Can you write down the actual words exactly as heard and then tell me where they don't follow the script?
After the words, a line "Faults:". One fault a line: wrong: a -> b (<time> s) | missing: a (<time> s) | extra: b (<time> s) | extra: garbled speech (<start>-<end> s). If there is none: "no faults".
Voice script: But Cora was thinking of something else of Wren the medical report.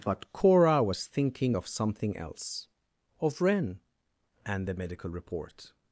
But Cora was thinking of something else of Wren and the medical report.
Faults:
extra: and (4.4 s)